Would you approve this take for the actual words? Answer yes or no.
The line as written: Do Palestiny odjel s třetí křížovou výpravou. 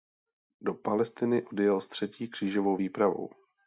yes